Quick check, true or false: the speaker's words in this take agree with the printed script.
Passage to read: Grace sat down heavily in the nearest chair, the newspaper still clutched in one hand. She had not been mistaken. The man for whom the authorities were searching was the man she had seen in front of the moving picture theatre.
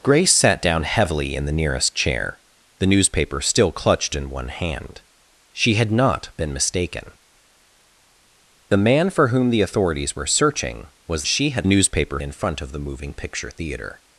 false